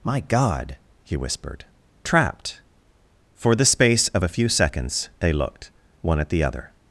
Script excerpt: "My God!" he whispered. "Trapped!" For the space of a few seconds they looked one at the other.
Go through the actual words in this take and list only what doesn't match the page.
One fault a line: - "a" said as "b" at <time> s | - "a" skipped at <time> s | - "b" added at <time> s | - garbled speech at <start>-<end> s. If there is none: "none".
none